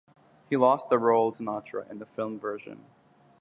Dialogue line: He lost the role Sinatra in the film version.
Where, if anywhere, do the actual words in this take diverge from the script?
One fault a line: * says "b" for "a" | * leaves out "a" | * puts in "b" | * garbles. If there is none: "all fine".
all fine